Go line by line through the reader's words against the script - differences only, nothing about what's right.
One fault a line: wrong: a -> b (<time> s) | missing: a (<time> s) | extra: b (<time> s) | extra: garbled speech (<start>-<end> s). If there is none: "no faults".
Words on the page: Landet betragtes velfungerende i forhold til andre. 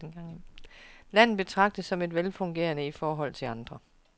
extra: som (1.9 s)